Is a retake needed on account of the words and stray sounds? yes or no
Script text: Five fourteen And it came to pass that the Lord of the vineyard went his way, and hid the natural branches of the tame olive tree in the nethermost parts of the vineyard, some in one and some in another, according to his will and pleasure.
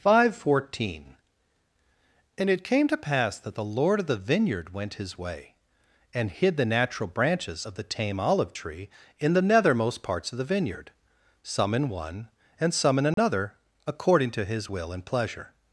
yes